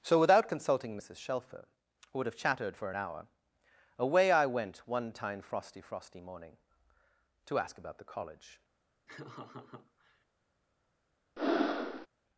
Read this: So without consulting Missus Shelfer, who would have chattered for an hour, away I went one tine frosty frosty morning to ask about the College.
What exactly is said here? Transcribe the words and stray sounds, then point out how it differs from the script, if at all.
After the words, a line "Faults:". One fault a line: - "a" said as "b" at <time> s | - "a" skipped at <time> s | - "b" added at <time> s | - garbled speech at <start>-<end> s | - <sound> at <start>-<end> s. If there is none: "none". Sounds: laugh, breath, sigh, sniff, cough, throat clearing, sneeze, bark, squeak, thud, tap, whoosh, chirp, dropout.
So without consulting Missus Shelfer, who would have chattered for an hour, away I went one tine frosty frosty morning to ask about the College.
Faults:
- laugh at 9.1-10.2 s
- breath at 11.4-12.1 s